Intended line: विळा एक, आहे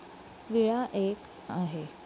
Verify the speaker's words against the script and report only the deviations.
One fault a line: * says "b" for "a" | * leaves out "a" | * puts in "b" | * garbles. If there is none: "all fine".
all fine